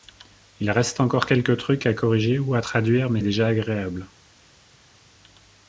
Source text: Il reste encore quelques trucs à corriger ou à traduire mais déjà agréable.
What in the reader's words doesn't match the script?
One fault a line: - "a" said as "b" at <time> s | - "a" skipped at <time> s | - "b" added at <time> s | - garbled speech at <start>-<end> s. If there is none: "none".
none